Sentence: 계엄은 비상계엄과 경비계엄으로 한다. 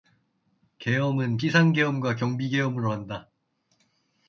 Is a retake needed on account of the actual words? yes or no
no